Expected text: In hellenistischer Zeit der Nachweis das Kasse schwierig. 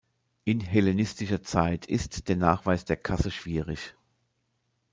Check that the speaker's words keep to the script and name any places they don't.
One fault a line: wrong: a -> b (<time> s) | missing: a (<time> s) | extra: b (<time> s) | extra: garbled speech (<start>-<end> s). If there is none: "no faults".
extra: ist (1.9 s)
wrong: das -> der (2.9 s)